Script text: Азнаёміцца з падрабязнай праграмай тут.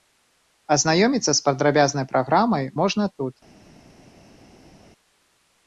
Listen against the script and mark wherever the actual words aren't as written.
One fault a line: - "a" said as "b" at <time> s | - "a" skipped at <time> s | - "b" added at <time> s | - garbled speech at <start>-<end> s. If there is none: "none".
- "можна" added at 2.8 s